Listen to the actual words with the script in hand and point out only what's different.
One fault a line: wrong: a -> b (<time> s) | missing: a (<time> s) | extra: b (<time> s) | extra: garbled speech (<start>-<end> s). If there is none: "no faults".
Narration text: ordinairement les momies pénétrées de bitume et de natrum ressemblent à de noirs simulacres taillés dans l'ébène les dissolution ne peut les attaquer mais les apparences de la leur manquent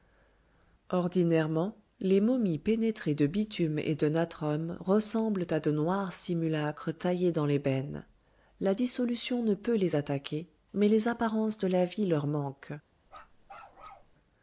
wrong: les -> la (8.6 s)
extra: vie (11.8 s)